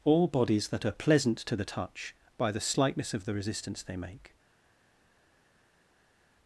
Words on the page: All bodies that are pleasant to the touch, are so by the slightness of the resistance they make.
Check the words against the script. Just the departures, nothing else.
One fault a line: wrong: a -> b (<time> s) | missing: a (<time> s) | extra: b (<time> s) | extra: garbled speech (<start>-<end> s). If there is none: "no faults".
missing: are so (2.1 s)